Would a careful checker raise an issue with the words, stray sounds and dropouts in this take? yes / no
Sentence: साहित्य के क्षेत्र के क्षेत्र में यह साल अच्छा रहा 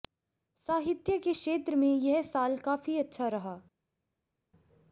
yes